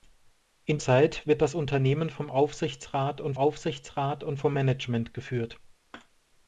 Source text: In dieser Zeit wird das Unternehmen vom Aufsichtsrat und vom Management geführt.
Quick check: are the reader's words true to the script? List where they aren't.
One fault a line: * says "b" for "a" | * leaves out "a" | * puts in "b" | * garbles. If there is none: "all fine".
* leaves out "dieser"
* puts in "Aufsichtsrat und"